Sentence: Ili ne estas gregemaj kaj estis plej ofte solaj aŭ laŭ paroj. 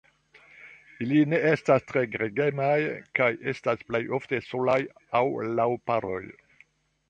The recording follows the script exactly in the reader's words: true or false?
false